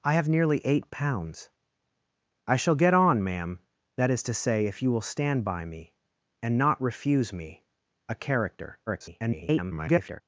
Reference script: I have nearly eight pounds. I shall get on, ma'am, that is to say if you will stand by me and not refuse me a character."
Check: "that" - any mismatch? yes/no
no